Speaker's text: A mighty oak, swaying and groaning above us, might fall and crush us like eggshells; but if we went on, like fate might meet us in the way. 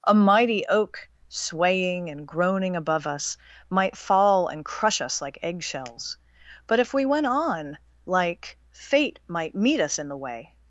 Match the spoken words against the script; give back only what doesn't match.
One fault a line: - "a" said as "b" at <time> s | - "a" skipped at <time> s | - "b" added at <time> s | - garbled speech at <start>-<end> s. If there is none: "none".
none